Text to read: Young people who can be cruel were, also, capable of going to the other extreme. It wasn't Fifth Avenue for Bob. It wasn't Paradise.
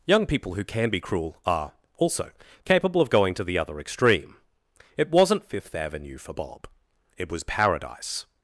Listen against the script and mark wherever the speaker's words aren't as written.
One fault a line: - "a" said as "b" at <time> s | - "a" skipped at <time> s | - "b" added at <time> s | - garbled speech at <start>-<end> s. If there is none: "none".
- "were" said as "are" at 1.4 s
- "wasn't" said as "was" at 7.3 s